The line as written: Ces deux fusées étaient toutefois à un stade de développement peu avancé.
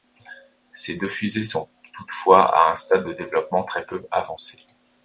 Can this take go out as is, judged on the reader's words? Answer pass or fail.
fail